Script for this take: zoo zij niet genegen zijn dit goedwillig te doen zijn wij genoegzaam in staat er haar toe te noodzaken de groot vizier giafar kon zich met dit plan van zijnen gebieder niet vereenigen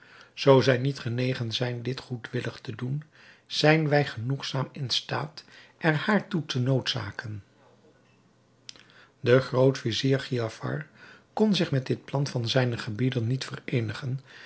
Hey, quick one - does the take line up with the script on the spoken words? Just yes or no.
yes